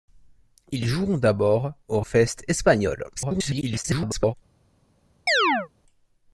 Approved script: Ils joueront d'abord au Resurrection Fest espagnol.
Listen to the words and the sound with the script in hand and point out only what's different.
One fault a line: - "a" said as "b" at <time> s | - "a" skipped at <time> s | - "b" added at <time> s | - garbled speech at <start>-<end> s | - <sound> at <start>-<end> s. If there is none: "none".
- "Resurrection" skipped at 2.0 s
- garbled speech at 3.1-4.3 s
- chirp at 5.3-5.7 s